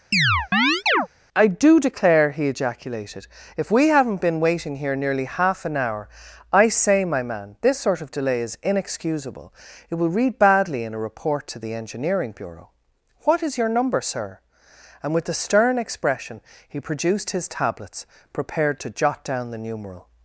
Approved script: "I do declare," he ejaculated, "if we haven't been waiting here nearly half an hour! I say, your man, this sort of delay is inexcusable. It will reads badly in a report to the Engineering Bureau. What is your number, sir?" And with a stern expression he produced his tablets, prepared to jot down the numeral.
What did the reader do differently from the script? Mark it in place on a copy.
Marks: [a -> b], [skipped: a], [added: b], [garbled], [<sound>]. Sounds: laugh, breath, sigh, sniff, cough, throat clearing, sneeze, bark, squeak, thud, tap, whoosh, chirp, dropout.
[chirp] "I do declare," he ejaculated, "if we haven't been waiting here nearly half an hour! I say, [your -> my] man, this sort of delay is inexcusable. It will [reads -> read] badly in a report to the Engineering Bureau. What is your number, sir?" And with a stern expression he produced his tablets, prepared to jot down the numeral.